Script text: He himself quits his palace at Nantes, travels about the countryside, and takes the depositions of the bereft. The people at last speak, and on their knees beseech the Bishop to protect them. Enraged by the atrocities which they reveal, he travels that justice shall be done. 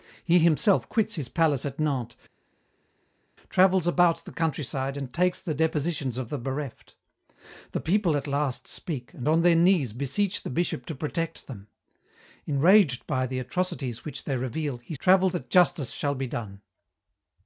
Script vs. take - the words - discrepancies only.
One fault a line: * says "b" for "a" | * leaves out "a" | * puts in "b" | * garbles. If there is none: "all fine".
all fine